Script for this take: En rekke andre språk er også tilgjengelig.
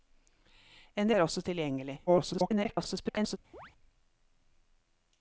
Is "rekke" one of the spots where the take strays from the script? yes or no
yes